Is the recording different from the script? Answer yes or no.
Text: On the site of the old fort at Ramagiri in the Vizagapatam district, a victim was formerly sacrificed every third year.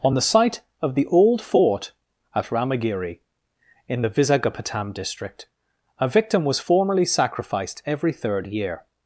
no